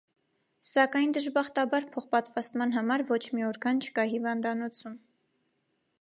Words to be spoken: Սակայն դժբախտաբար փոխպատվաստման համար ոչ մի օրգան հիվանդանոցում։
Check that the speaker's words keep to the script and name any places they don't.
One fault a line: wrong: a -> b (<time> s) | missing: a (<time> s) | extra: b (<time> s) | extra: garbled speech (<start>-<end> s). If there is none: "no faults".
extra: չկա (3.9 s)